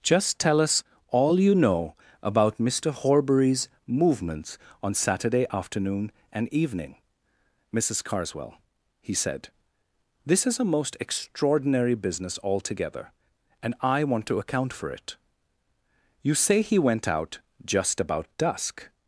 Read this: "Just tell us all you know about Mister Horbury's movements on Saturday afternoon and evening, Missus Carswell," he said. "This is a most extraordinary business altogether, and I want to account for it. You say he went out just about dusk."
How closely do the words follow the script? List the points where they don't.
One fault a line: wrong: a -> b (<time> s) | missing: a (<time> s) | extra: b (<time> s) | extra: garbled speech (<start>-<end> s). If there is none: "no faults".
no faults